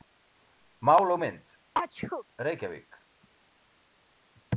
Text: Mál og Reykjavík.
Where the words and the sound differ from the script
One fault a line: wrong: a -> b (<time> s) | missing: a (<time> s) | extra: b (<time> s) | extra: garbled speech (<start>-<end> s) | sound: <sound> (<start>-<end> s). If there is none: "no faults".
extra: mynd (1.2 s)
sound: sneeze (1.7-2.2 s)